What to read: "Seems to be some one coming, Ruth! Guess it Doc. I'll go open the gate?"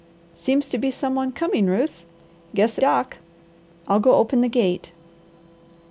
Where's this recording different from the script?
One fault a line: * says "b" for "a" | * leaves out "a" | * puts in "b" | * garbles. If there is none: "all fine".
all fine